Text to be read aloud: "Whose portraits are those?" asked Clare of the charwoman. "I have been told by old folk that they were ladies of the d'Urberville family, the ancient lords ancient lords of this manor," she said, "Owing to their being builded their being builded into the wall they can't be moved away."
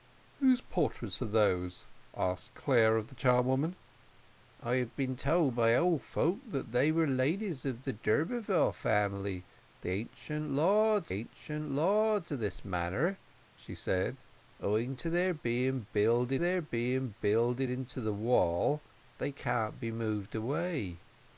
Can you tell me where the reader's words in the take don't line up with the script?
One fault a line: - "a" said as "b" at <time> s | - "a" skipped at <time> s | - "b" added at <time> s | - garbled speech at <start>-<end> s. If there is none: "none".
none